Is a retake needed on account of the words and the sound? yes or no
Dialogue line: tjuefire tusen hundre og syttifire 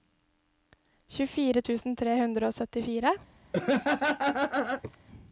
yes